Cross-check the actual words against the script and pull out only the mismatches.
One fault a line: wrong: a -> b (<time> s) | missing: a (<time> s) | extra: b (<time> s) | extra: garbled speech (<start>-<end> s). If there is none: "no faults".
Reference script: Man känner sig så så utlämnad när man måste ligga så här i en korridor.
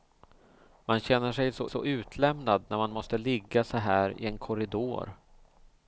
no faults